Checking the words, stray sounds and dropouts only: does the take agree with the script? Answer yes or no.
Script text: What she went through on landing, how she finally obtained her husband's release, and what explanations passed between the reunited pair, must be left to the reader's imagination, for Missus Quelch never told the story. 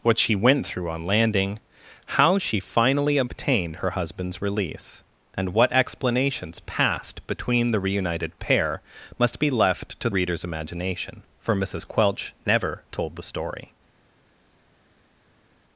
no